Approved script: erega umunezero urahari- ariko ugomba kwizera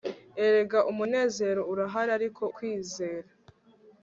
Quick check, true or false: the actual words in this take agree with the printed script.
false